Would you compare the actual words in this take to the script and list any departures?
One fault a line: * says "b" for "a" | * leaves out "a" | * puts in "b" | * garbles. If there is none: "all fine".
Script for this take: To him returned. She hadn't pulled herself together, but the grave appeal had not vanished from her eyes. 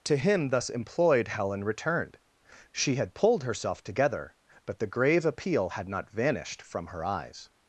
* puts in "thus employed Helen"
* says "had" for "hadn't"